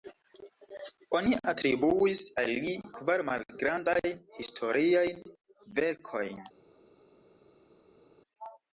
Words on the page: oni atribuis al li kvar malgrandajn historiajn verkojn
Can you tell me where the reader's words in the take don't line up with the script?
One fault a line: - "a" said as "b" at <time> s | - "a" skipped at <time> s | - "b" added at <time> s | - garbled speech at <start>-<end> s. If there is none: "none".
none